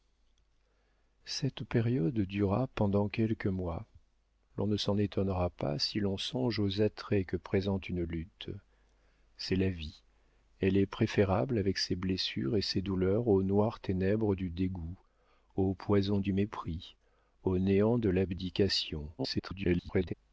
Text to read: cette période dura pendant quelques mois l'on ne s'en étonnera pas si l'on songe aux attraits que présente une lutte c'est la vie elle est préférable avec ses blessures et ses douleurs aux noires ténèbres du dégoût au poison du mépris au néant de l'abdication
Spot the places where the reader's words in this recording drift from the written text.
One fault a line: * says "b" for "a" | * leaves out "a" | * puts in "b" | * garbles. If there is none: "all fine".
* garbles